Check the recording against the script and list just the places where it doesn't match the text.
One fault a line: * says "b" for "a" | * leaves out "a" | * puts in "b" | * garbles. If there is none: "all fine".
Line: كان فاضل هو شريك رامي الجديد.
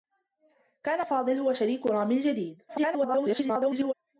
* garbles